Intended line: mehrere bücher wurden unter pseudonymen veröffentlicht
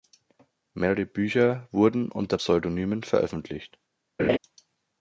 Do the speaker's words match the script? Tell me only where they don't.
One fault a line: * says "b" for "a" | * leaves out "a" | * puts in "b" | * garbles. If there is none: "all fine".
all fine